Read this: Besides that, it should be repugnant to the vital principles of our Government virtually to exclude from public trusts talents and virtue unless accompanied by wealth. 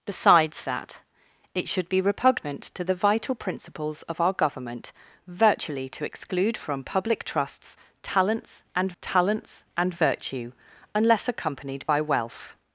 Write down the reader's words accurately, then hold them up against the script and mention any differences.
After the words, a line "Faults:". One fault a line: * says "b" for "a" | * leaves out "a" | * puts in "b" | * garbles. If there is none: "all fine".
Besides that, it should be repugnant to the vital principles of our Government virtually to exclude from public trusts talents and talents and virtue unless accompanied by wealth.
Faults:
* puts in "talents and"